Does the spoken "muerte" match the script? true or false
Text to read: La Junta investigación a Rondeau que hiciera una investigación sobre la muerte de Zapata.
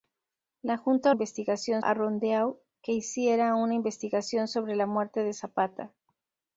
true